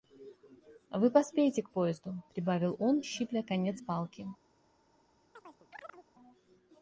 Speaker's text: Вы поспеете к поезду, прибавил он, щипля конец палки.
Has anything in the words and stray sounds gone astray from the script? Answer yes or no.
yes